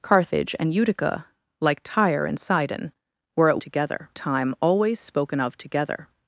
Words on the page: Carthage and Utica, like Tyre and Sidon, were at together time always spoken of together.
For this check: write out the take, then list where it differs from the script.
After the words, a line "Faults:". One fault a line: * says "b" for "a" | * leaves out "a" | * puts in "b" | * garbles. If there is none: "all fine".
Carthage and Utica, like Tyre and Sidon, were at together time always spoken of together.
Faults:
all fine